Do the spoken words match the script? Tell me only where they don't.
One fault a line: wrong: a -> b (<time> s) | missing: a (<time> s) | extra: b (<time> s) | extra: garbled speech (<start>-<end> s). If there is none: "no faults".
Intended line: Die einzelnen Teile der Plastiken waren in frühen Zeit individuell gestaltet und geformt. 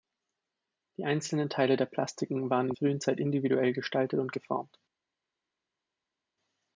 no faults